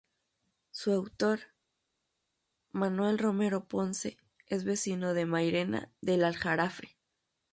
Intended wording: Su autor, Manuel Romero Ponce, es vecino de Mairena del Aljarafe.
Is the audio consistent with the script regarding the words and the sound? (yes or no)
yes